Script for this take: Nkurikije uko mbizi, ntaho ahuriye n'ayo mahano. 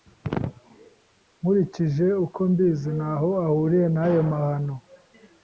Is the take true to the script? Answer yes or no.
yes